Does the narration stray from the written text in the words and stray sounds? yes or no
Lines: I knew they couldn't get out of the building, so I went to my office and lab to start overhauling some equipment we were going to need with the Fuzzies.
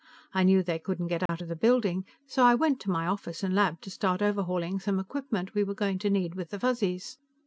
yes